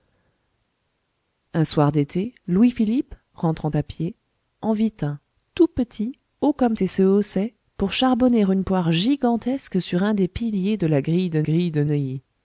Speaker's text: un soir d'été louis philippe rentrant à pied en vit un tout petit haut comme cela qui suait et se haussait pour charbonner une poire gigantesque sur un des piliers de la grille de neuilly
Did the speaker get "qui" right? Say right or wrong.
wrong